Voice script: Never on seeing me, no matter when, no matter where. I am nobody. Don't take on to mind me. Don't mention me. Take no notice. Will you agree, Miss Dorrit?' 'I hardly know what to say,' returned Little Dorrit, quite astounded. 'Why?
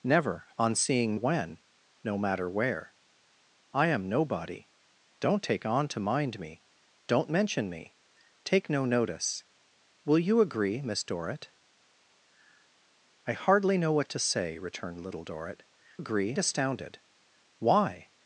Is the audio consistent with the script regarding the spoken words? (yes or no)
no